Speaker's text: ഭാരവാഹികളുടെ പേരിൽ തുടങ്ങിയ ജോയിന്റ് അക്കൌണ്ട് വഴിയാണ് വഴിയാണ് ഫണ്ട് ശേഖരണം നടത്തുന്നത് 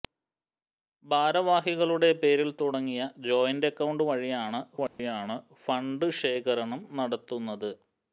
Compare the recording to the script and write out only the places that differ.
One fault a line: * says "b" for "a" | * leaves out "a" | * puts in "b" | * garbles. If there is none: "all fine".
all fine